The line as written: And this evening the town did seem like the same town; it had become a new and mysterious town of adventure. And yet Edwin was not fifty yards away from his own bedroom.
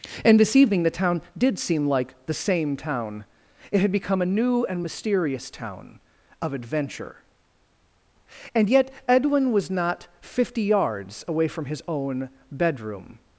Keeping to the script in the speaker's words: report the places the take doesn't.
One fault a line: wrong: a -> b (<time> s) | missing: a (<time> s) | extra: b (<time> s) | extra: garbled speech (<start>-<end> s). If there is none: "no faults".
no faults